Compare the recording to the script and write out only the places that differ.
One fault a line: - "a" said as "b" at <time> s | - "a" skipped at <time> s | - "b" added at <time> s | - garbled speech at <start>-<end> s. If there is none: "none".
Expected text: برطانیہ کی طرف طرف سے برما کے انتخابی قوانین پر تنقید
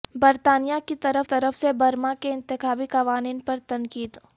none